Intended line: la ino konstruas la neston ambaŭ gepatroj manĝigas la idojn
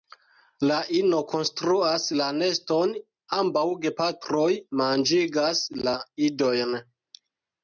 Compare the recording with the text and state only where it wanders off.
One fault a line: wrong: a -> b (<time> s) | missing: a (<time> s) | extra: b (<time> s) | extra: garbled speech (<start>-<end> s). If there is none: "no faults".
no faults